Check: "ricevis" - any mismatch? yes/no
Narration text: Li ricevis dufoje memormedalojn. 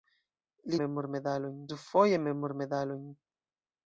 yes